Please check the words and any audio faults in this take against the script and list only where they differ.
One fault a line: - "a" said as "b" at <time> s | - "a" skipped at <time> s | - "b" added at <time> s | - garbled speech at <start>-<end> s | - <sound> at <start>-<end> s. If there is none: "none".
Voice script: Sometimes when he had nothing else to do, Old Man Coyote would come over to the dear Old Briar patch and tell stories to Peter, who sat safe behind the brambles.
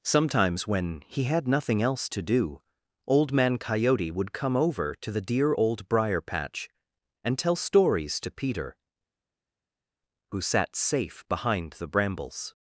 none